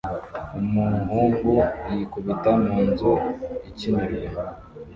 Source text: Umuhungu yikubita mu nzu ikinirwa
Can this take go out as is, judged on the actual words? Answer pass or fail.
pass